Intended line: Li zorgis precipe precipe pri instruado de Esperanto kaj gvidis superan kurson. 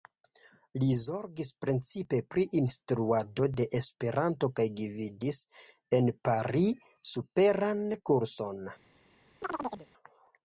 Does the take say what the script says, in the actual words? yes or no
no